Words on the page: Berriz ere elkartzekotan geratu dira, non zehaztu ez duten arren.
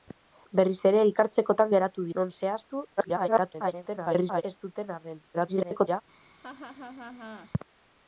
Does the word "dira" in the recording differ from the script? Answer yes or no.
yes